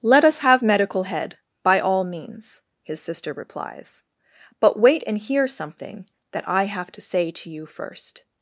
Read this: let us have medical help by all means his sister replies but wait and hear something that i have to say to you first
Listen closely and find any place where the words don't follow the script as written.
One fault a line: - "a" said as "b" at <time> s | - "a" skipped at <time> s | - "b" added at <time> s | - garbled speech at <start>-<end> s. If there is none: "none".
- "help" said as "head" at 1.0 s